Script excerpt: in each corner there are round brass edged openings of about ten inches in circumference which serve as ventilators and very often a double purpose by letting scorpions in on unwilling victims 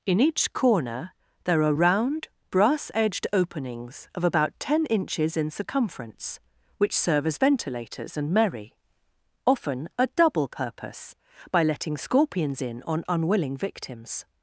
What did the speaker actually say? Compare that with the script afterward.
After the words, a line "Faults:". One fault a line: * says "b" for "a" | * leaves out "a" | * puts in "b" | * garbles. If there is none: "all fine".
in each corner there are round brass edged openings of about ten inches in circumference which serve as ventilators and merry often a double purpose by letting scorpions in on unwilling victims
Faults:
* says "merry" for "very"